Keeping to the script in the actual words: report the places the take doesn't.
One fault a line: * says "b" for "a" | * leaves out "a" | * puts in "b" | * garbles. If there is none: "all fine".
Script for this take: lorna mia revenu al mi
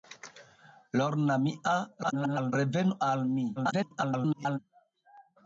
* garbles
* garbles